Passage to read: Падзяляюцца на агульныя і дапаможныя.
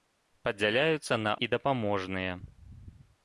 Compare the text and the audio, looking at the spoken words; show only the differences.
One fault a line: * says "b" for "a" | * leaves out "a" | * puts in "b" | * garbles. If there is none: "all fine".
* leaves out "агульныя"